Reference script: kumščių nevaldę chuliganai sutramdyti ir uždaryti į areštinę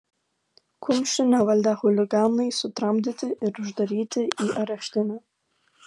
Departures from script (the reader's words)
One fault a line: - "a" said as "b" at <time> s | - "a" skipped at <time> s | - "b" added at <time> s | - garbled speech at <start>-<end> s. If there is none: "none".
none